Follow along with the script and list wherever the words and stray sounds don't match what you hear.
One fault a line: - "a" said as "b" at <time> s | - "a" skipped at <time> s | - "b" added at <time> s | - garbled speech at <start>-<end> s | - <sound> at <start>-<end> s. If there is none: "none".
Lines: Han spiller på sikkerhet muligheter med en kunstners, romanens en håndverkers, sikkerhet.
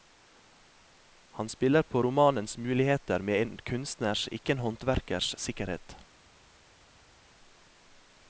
- "sikkerhet" said as "romanens" at 2.0 s
- "romanens" said as "ikke" at 4.3 s